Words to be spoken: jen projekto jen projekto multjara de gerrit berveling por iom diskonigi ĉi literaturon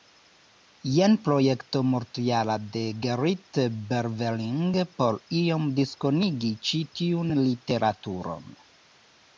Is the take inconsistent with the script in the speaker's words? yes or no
yes